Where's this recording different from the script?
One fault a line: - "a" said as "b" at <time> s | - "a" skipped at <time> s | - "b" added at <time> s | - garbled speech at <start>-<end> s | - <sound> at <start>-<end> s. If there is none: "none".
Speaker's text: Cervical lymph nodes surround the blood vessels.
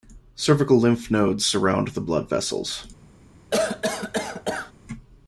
- cough at 3.5-4.7 s